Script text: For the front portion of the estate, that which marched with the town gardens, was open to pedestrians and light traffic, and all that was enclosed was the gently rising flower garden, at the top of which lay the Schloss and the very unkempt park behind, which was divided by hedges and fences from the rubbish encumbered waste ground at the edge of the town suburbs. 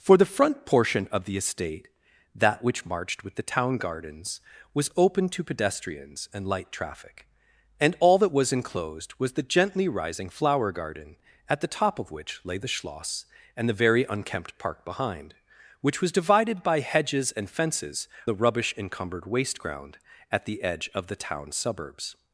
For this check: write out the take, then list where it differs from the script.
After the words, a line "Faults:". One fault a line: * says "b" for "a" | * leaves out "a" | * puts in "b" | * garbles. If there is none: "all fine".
For the front portion of the estate, that which marched with the town gardens, was open to pedestrians and light traffic, and all that was enclosed was the gently rising flower garden, at the top of which lay the Schloss and the very unkempt park behind, which was divided by hedges and fences the rubbish encumbered waste ground at the edge of the town suburbs.
Faults:
* leaves out "from"